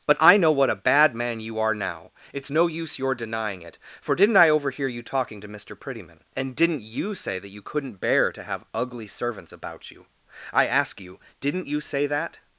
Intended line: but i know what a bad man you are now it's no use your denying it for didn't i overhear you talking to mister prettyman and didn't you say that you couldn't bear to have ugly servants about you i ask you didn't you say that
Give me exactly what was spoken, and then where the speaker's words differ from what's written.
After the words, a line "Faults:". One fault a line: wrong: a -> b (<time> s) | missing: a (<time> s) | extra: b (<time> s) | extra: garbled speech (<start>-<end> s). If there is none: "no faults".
but i know what a bad man you are now it's no use your denying it for didn't i overhear you talking to mister prettyman and didn't you say that you couldn't bear to have ugly servants about you i ask you didn't you say that
Faults:
no faults